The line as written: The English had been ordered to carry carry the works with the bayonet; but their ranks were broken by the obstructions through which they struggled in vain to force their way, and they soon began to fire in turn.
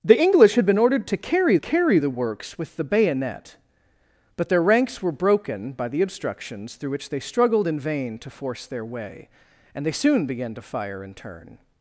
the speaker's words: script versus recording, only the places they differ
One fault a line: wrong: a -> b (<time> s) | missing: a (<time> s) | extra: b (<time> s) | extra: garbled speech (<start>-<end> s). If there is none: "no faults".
no faults